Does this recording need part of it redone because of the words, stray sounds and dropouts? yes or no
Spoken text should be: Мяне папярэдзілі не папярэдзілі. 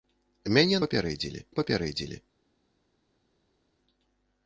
no